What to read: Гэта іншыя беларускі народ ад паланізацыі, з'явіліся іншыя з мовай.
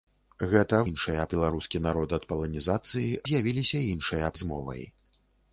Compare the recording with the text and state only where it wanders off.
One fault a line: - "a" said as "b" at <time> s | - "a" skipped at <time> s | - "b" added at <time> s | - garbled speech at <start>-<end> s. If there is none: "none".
none